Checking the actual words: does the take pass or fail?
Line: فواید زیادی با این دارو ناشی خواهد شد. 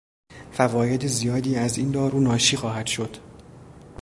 fail